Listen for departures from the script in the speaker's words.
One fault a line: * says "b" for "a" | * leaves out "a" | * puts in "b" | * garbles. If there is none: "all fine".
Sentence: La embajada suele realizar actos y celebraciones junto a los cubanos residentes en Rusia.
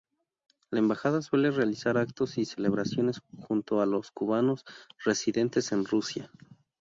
all fine